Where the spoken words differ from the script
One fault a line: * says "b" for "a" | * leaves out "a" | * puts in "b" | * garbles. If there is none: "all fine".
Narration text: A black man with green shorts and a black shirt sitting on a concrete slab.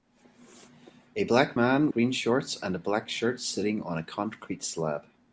* leaves out "with"